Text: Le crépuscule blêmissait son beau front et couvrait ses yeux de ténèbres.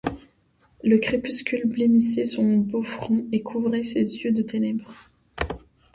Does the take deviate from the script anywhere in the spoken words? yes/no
no